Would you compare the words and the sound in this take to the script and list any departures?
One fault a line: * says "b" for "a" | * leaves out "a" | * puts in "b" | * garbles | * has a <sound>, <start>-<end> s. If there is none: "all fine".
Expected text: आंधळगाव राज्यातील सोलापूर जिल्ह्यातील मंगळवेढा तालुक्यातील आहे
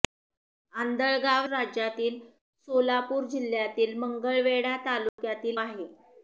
* has a dropout, 5.1-5.2 s